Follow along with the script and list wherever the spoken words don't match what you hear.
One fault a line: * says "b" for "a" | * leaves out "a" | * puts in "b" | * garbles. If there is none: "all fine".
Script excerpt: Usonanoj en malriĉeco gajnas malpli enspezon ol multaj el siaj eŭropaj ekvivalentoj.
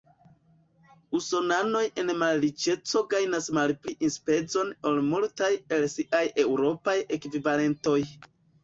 all fine